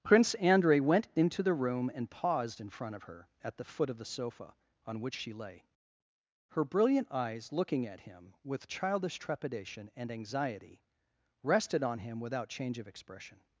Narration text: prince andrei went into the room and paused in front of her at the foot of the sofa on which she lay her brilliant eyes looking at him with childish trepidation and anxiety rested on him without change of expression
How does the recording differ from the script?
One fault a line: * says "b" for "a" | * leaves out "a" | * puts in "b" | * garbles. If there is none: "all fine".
all fine